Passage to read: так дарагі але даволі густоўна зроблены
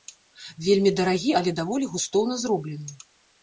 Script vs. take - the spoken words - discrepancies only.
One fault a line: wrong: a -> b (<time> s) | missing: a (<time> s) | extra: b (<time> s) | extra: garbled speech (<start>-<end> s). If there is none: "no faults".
wrong: так -> вельмі (0.7 s)